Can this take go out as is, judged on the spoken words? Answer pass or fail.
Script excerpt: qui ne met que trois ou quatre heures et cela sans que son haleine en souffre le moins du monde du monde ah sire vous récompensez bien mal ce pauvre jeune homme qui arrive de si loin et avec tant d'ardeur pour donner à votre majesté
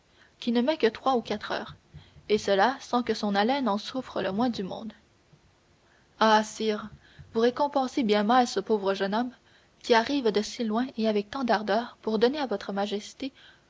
fail